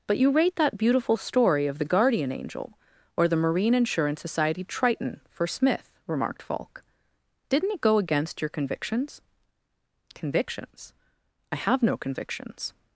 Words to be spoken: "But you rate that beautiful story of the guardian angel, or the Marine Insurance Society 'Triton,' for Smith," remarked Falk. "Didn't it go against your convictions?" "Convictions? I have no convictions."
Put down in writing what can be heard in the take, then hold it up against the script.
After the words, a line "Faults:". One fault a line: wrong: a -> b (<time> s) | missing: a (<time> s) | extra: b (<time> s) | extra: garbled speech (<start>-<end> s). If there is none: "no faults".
"But you rate that beautiful story of the guardian angel, or the Marine Insurance Society 'Triton,' for Smith," remarked Falk. "Didn't it go against your convictions?" "Convictions? I have no convictions."
Faults:
no faults